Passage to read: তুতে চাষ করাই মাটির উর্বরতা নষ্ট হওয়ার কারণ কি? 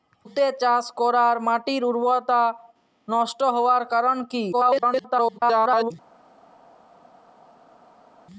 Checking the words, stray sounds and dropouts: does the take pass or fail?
fail